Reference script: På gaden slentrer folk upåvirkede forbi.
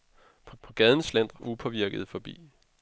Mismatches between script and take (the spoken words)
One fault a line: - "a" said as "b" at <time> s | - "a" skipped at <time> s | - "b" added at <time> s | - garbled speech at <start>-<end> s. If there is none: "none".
- "på" added at 0.6 s
- "folk" skipped at 1.4 s